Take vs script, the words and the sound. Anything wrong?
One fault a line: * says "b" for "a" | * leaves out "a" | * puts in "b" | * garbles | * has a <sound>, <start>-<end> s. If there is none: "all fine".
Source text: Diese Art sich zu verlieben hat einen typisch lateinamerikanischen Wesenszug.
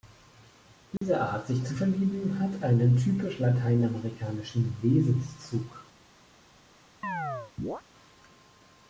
* has a dropout, 1.0-1.0 s
* has a chirp, 7.0-7.8 s